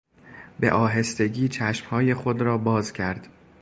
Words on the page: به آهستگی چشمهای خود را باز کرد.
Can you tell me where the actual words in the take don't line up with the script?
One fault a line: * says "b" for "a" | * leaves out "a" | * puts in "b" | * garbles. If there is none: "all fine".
all fine